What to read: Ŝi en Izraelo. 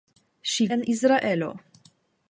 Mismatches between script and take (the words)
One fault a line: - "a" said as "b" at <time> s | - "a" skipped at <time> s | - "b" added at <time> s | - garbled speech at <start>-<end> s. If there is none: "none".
none